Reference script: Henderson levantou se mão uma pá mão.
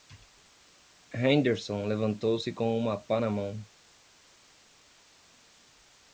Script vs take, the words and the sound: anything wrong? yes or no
yes